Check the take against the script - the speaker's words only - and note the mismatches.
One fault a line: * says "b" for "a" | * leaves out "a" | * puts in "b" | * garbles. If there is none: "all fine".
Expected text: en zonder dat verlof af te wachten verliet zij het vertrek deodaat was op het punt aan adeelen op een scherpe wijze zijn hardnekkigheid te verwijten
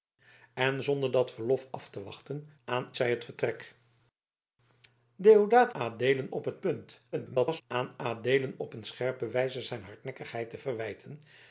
* says "aan" for "verliet"
* says "adeelen" for "was"
* garbles